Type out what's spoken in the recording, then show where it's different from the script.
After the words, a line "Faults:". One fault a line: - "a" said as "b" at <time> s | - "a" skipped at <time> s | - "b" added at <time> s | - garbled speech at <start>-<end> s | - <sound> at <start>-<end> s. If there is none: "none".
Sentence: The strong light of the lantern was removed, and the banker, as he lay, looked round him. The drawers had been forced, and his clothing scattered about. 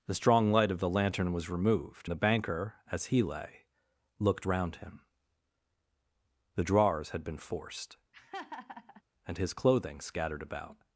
The strong light of the lantern was removed, the banker, as he lay, looked round him. The drawers had been forced, and his clothing scattered about.
Faults:
- "and" skipped at 2.1 s
- laugh at 8.1-9.0 s